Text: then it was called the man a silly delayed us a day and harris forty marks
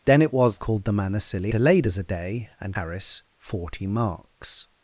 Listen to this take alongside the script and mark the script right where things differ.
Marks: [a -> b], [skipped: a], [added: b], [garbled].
then it was called the man a silly delayed us a day and harris forty marks